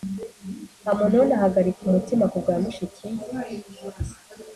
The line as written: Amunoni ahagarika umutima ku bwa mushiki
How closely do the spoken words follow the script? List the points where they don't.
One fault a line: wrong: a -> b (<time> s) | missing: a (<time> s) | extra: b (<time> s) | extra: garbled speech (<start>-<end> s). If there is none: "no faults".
no faults